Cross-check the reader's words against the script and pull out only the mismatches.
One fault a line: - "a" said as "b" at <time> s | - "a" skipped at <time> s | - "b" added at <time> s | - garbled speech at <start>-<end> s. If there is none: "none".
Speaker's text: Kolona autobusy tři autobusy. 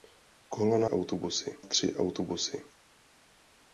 none